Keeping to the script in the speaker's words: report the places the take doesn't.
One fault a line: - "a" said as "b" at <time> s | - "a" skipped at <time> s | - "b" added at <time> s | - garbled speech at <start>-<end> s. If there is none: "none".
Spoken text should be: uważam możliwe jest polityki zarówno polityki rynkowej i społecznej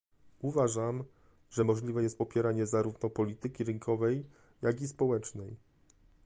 - "że" added at 1.5 s
- "polityki" said as "popieranie" at 2.2 s
- "jak" added at 4.6 s